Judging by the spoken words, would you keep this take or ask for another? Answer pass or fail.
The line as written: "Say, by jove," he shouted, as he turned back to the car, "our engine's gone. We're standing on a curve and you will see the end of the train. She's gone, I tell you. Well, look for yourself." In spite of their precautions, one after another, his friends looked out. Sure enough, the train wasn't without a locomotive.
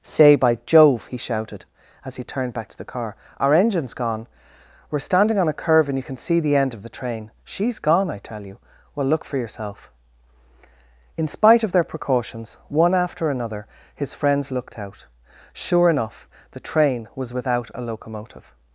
fail